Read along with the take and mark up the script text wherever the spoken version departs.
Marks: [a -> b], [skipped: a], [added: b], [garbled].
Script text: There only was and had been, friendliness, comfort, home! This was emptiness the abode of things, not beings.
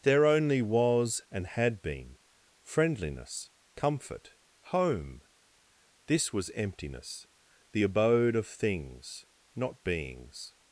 There only was and had been, friendliness, comfort, home! This was emptiness the abode of things, not beings.